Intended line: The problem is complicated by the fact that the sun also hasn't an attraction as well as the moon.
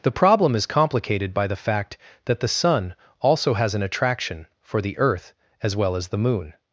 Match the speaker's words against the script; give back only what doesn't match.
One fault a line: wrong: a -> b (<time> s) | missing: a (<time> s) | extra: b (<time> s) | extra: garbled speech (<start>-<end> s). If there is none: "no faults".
wrong: hasn't -> has (3.5 s)
extra: for the earth (4.6 s)